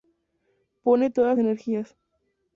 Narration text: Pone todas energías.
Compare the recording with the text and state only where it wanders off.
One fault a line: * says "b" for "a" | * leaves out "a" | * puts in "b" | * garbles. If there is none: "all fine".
all fine